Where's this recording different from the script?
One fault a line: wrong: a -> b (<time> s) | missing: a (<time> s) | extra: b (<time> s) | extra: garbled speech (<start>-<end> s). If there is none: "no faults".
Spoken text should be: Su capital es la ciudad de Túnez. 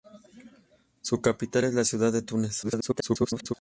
extra: garbled speech (2.6-3.5 s)